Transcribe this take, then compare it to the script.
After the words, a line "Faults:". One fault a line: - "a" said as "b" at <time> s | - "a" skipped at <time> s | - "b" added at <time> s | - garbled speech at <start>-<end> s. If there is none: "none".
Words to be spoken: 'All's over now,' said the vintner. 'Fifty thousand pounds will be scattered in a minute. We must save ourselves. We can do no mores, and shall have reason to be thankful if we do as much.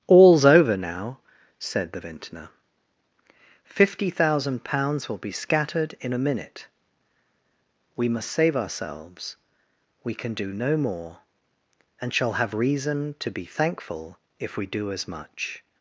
'All's over now,' said the vintner. 'Fifty thousand pounds will be scattered in a minute. We must save ourselves. We can do no more, and shall have reason to be thankful if we do as much.
Faults:
- "mores" said as "more" at 10.8 s